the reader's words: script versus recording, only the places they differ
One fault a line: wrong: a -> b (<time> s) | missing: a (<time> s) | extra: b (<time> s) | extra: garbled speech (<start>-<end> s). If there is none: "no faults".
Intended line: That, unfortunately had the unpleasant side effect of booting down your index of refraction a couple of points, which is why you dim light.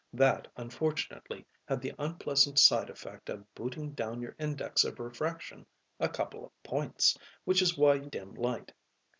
no faults